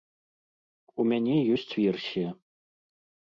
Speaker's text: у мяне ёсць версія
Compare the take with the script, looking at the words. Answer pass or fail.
pass